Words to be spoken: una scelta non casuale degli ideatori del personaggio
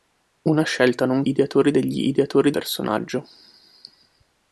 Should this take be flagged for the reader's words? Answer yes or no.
yes